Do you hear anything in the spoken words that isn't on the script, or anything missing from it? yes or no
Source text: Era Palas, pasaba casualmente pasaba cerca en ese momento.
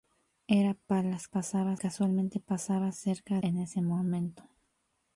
no